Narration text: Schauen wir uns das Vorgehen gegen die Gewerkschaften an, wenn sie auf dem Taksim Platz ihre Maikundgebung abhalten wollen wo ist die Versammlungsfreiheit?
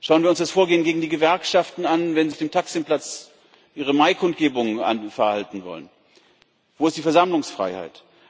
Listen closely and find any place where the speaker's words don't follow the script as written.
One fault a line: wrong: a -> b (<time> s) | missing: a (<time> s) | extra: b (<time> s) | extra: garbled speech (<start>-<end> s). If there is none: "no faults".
missing: sie (2.3 s)